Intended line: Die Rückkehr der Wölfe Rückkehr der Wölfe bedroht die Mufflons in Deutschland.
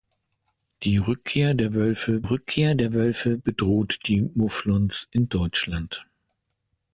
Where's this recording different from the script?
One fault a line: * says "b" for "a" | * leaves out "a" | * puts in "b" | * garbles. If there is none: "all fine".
all fine